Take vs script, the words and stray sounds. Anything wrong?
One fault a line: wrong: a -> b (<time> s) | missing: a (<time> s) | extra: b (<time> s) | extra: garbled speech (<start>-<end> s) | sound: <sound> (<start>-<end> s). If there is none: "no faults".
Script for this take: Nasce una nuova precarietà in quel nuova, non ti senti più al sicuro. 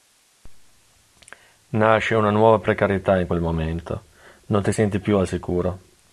wrong: nuova -> momento (3.4 s)